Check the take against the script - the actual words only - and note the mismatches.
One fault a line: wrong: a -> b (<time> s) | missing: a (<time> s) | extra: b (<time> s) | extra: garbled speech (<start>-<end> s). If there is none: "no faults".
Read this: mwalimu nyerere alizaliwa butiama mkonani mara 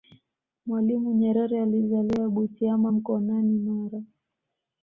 no faults